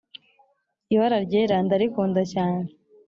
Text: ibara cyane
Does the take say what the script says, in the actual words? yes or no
no